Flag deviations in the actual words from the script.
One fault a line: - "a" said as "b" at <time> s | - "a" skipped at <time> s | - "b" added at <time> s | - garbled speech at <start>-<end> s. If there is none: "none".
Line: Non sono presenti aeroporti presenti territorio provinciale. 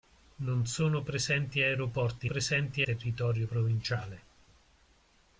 none